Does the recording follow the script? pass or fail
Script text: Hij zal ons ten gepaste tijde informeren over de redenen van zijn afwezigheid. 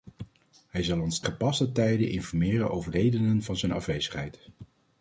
fail